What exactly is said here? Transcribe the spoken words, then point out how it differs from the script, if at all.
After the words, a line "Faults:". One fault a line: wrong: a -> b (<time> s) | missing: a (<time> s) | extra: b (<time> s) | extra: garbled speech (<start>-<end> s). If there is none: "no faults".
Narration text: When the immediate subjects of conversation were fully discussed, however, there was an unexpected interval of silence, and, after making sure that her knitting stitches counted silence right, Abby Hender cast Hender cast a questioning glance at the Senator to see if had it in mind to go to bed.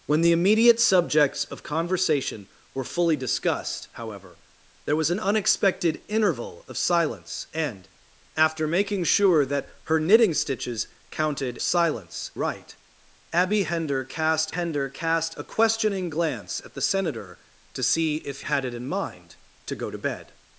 When the immediate subjects of conversation were fully discussed, however, there was an unexpected interval of silence, and, after making sure that her knitting stitches counted silence right, Abby Hender cast Hender cast a questioning glance at the Senator to see if had it in mind to go to bed.
Faults:
no faults